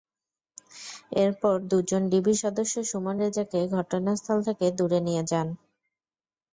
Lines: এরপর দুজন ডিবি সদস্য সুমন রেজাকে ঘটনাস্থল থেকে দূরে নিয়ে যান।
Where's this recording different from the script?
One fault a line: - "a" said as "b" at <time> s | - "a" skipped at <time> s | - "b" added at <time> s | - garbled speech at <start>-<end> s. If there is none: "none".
none